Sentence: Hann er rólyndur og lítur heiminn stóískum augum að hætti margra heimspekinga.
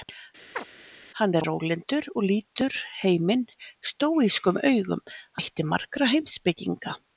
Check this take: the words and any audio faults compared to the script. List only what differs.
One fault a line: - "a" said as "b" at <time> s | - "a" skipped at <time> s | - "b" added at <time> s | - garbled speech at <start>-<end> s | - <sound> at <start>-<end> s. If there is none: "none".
- chirp at 0.6-0.6 s
- "að" skipped at 5.0 s